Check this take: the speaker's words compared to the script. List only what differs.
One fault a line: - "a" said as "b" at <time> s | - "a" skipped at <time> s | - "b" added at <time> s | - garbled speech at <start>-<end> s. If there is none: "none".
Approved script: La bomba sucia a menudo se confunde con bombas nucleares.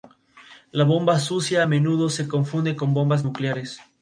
none